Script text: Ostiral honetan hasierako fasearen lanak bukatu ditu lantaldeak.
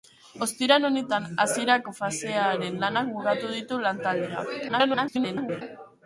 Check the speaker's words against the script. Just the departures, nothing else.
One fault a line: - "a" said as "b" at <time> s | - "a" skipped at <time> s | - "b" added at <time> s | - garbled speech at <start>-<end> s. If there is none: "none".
- garbled speech at 4.7-5.6 s